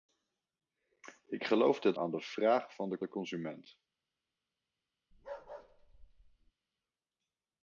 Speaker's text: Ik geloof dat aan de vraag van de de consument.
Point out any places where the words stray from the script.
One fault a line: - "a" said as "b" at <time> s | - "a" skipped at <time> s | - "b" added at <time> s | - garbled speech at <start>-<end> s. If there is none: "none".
none